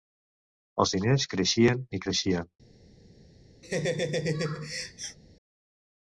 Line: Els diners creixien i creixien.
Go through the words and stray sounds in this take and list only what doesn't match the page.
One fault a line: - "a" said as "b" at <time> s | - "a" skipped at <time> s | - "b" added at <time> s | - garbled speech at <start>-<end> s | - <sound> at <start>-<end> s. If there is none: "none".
- laugh at 3.6-5.2 s